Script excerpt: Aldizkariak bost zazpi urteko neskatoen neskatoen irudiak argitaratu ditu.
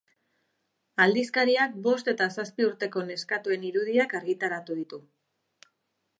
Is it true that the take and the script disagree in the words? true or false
true